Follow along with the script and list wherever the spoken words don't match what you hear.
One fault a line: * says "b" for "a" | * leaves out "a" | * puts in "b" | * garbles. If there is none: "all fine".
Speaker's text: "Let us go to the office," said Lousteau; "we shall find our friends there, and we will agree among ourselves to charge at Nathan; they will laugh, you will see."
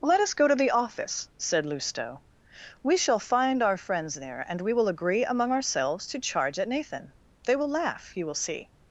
all fine